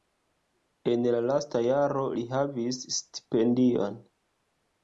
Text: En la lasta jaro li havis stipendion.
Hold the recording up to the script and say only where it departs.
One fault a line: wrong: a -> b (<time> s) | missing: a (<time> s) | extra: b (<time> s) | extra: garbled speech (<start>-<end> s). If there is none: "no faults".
no faults